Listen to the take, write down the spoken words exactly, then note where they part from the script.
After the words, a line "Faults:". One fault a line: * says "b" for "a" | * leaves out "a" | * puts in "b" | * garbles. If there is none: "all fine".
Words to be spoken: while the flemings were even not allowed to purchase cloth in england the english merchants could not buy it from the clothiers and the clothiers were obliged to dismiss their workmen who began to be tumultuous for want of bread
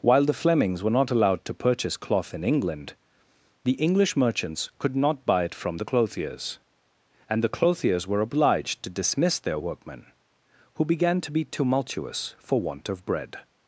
while the flemings were not allowed to purchase cloth in england the english merchants could not buy it from the clothiers and the clothiers were obliged to dismiss their workmen who began to be tumultuous for want of bread
Faults:
* leaves out "even"